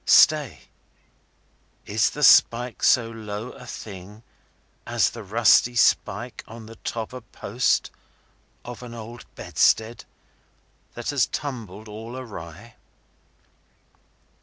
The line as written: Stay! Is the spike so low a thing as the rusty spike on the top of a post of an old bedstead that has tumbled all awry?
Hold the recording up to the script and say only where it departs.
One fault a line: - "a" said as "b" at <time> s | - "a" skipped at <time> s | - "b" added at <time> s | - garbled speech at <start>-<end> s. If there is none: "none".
- "of" skipped at 7.1 s